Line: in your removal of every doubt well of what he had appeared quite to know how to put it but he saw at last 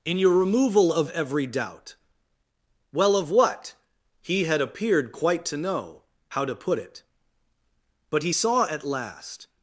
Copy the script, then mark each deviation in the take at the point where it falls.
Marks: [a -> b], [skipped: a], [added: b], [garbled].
in your removal of every doubt well of what he had appeared quite to know how to put it but he saw at last